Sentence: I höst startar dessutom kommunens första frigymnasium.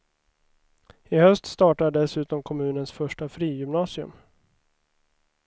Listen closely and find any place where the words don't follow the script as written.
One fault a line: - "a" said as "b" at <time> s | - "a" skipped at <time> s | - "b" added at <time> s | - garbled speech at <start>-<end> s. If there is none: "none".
none